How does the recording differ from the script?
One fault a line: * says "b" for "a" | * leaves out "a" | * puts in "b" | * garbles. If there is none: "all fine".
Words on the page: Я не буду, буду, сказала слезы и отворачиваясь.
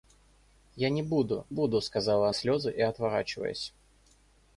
all fine